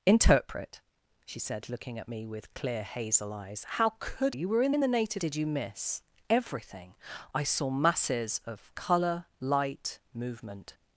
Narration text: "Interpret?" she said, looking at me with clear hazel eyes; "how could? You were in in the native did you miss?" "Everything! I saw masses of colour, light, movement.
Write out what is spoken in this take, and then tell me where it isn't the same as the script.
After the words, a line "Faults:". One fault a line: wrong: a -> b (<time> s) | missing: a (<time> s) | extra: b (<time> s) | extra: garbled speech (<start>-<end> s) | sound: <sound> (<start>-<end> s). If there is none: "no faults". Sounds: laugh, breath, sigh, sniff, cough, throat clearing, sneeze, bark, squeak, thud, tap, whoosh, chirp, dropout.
"Interpret?" she said, looking at me with clear hazel eyes; "how could? You were in in the native did you miss?" "Everything! I saw masses of colour, light, movement.
Faults:
no faults